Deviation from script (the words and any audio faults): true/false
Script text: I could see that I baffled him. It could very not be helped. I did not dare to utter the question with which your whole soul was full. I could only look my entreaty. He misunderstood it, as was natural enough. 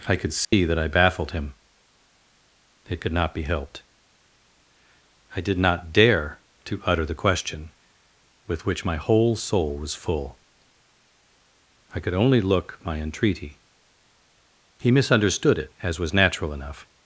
true